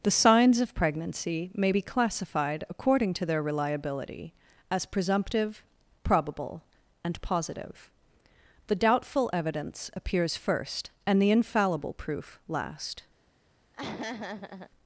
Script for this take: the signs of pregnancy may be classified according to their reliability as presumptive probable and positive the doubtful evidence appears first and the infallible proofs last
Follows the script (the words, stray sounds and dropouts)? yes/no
no